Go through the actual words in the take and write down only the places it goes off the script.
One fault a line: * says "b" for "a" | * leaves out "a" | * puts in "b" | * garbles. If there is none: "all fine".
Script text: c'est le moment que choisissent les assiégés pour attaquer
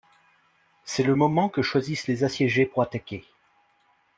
all fine